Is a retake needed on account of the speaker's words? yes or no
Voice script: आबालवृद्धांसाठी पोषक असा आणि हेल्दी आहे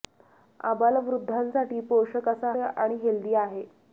no